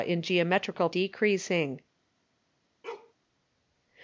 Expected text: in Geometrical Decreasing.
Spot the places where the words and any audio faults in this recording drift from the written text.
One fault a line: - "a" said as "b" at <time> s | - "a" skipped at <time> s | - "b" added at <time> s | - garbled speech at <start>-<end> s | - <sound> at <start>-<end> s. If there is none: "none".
- bark at 2.8-3.1 s